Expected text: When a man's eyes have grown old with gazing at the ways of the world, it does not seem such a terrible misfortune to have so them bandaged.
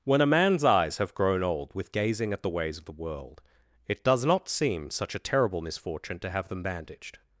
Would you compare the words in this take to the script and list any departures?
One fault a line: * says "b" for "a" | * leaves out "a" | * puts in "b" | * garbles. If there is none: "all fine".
* leaves out "so"